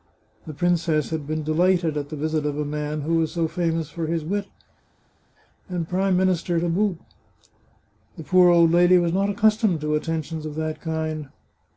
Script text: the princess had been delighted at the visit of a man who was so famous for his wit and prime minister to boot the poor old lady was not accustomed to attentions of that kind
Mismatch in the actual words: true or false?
false